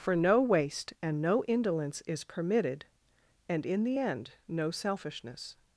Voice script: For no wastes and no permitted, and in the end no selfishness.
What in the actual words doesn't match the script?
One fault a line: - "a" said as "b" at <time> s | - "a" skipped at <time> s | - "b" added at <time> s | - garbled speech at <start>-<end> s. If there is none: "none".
- "wastes" said as "waste" at 0.4 s
- "indolence is" added at 1.4 s